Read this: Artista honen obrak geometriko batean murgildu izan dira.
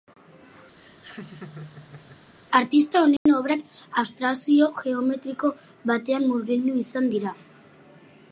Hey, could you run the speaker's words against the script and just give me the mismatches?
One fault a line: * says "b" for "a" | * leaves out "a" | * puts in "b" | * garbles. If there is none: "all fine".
* puts in "abstrakzio"